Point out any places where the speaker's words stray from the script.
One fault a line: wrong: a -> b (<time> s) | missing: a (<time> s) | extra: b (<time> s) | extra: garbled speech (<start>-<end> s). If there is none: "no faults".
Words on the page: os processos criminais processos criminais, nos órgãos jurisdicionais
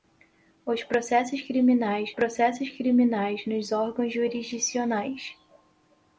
no faults